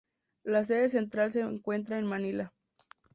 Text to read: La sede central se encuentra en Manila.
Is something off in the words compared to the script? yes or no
no